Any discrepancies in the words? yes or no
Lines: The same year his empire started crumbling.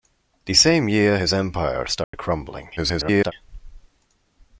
yes